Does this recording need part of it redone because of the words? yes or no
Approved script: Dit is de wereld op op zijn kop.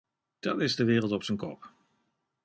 yes